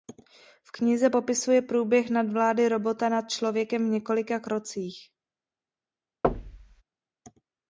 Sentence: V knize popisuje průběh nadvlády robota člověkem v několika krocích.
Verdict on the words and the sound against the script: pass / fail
fail